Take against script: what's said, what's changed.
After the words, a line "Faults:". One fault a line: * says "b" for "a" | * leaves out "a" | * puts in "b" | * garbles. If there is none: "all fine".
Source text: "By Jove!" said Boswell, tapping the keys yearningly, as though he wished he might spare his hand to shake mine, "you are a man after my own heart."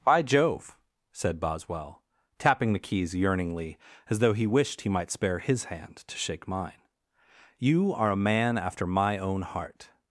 "By Jove!" said Boswell, tapping the keys yearningly, as though he wished he might spare his hand to shake mine, "you are a man after my own heart."
Faults:
all fine